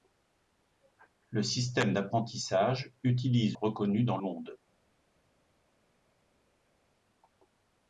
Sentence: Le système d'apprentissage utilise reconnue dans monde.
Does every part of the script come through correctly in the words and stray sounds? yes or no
yes